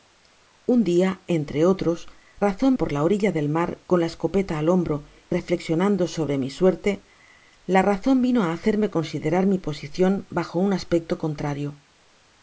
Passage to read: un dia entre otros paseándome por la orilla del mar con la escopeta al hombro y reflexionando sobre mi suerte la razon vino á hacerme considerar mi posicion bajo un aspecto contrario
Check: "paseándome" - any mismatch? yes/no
yes